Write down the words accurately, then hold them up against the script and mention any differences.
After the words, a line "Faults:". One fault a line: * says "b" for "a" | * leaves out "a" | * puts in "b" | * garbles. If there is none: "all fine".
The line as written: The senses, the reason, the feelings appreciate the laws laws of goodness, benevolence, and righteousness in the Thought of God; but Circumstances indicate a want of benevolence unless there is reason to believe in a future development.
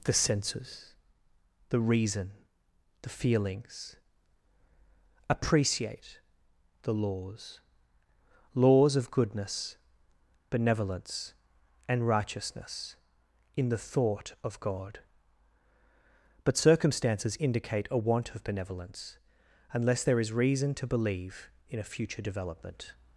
The senses, the reason, the feelings appreciate the laws laws of goodness, benevolence, and righteousness in the Thought of God; but Circumstances indicate a want of benevolence unless there is reason to believe in a future development.
Faults:
all fine